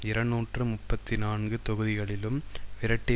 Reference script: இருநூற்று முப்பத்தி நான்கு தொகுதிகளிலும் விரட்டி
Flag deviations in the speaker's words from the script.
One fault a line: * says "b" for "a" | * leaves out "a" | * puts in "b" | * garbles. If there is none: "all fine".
all fine